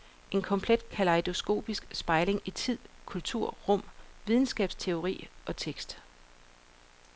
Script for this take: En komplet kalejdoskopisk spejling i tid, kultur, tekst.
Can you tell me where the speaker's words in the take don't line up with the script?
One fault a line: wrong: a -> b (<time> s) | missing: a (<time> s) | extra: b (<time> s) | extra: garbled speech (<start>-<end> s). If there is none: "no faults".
extra: rum videnskabsteori og (3.7 s)